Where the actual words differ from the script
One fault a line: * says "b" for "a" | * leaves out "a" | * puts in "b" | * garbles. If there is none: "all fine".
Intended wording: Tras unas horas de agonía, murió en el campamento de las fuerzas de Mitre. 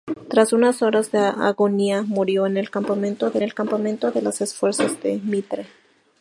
* puts in "el campamento de"